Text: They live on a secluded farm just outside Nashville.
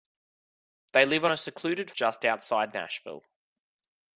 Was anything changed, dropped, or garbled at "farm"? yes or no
yes